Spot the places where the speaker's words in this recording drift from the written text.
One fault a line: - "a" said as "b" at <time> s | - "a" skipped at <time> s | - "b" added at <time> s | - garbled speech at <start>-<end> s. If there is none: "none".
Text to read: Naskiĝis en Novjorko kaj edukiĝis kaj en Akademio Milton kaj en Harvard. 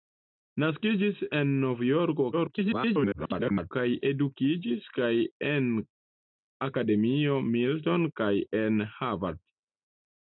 - garbled speech at 2.3-3.7 s